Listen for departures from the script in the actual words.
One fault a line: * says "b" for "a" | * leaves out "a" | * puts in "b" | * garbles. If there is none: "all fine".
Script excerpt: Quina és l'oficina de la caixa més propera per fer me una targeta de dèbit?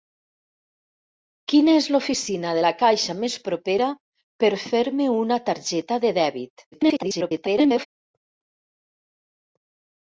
* garbles